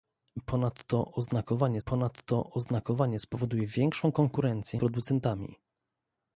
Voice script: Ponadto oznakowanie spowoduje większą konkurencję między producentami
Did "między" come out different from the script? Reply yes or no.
yes